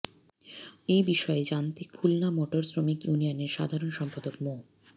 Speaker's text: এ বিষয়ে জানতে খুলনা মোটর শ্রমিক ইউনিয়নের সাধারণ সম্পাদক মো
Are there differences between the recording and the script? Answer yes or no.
no